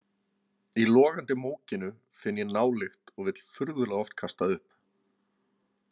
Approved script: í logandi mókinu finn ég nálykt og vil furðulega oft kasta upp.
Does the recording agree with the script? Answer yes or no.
yes